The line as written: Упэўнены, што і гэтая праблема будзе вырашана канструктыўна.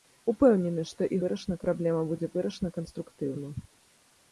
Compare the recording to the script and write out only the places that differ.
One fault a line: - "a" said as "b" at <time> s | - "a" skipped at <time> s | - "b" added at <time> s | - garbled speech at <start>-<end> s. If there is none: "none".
- "гэтая" said as "вырашана" at 1.2 s